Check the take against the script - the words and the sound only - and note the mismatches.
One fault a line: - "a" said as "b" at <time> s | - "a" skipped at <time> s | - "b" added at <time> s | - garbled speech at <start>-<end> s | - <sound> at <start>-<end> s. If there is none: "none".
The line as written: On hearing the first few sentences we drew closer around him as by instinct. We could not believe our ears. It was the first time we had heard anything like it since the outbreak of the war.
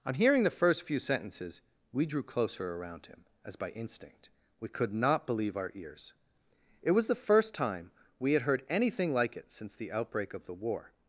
none